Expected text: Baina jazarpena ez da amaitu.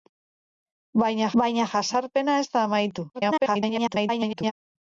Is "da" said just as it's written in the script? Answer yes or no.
yes